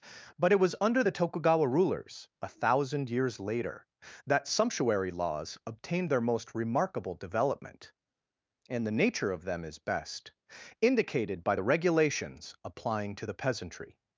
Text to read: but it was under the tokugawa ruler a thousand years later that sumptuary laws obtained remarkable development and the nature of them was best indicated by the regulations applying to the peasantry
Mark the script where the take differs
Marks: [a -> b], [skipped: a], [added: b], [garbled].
but it was under the tokugawa [ruler -> rulers] a thousand years later that sumptuary laws obtained [added: their most] remarkable development and the nature of them [was -> is] best indicated by the regulations applying to the peasantry